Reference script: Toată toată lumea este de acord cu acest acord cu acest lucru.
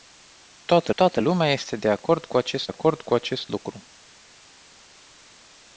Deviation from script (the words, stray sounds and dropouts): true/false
false